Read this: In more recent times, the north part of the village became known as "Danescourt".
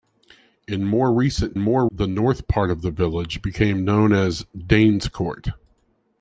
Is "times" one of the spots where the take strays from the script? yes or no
yes